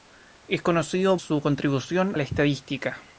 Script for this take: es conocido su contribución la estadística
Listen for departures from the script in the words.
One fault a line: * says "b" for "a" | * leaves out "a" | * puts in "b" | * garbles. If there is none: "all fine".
all fine